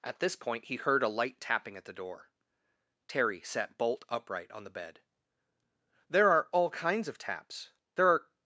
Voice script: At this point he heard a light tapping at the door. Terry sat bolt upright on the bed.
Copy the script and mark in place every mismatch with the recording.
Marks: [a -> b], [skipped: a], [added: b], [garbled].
At this point he heard a light tapping at the door. Terry sat bolt upright on the bed. [added: There are all kinds of taps There are]